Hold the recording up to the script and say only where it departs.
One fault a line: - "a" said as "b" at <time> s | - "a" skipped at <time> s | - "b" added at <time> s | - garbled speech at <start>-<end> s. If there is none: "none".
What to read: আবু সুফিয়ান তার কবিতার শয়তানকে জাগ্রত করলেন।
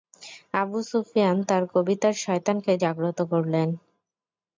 none